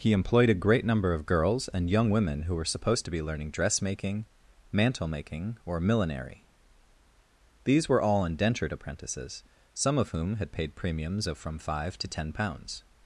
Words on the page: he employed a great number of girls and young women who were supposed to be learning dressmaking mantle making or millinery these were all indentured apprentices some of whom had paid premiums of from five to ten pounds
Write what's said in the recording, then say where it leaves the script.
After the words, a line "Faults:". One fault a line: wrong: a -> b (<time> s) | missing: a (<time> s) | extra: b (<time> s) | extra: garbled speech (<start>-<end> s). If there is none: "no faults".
he employed a great number of girls and young women who were supposed to be learning dressmaking mantle making or millinery these were all indentured apprentices some of whom had paid premiums of from five to ten pounds
Faults:
no faults